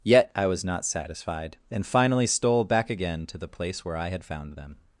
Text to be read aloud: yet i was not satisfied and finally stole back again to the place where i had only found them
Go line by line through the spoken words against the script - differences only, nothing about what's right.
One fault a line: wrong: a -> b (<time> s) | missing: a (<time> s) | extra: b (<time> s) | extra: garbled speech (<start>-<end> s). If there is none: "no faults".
missing: only (4.2 s)